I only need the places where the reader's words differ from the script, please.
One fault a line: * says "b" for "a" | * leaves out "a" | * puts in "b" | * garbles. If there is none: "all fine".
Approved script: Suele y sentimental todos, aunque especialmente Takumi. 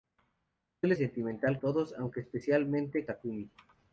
all fine